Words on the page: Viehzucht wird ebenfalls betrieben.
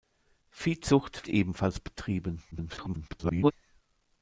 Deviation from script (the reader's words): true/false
true